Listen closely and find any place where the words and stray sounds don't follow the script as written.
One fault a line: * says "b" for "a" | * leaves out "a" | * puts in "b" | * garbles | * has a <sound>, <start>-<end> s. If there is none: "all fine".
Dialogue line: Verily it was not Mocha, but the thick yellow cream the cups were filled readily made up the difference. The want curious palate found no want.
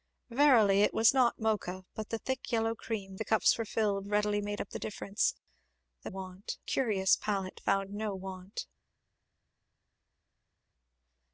all fine